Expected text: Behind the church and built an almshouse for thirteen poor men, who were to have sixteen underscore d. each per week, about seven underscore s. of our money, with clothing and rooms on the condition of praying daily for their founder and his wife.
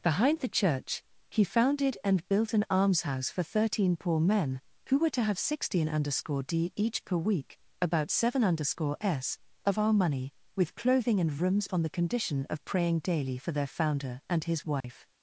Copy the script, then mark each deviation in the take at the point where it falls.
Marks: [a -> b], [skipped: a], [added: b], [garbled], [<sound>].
Behind the church [added: he founded] and built an almshouse for thirteen poor men, who were to have sixteen underscore d. each per week, about seven underscore s. of our money, with clothing and rooms on the condition of praying daily for their founder and his wife. [dropout]